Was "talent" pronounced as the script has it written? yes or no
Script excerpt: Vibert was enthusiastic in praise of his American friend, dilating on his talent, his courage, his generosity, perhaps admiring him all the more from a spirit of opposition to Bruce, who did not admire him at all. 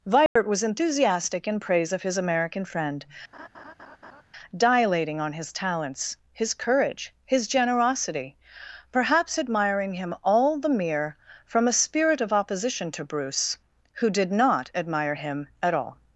no